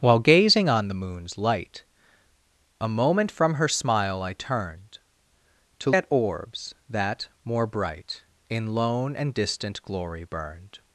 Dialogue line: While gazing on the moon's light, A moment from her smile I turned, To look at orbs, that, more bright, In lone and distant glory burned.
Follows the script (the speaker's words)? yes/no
no